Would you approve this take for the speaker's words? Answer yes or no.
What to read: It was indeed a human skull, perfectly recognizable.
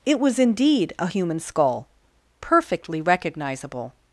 yes